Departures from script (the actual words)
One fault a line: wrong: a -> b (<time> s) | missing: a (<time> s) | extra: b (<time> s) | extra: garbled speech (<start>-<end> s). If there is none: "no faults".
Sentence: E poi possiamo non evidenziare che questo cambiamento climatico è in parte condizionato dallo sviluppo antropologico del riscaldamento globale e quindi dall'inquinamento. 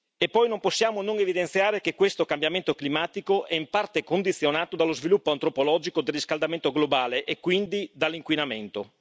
extra: non (0.5 s)